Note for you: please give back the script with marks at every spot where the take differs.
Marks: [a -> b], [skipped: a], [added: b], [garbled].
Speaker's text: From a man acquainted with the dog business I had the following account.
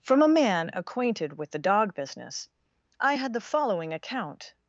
From a man acquainted with the dog business I had the following account.